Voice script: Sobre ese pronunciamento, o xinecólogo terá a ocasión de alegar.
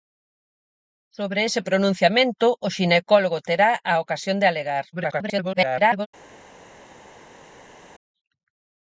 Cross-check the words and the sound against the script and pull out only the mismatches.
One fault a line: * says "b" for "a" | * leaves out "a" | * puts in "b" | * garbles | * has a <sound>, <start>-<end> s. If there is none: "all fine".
* garbles